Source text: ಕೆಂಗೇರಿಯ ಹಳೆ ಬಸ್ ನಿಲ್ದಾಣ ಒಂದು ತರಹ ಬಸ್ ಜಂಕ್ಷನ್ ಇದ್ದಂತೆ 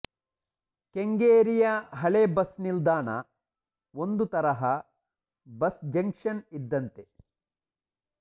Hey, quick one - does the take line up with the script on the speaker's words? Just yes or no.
yes